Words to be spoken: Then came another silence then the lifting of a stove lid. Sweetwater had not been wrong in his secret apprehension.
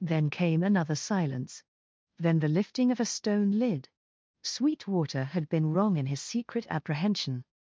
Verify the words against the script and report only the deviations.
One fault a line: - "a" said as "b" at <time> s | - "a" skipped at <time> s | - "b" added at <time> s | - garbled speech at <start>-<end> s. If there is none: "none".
- "stove" said as "stone" at 3.0 s
- "not" skipped at 5.5 s